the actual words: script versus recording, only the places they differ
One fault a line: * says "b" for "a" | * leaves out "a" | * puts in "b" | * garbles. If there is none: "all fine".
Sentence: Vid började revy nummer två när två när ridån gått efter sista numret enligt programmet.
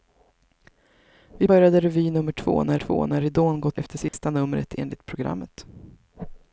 all fine